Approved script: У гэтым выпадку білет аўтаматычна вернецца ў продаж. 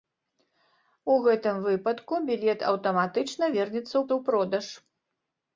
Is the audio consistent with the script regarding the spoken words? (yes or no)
no